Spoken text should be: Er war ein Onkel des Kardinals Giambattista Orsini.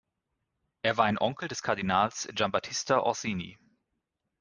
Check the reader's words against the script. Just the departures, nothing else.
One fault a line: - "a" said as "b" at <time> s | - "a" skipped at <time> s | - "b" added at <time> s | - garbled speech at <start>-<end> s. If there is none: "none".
none